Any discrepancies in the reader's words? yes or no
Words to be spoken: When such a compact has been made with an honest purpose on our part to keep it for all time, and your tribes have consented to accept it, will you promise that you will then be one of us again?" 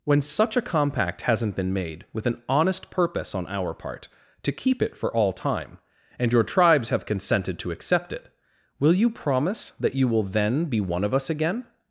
yes